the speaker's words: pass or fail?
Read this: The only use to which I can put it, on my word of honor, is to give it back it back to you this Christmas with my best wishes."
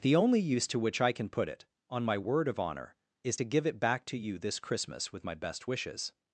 fail